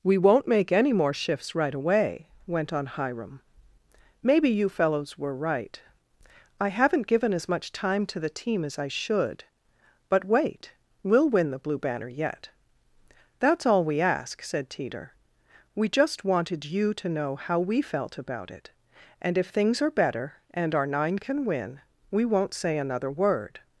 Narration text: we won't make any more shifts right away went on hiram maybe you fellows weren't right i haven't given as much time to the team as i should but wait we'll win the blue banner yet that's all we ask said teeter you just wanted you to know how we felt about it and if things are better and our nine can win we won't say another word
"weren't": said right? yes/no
no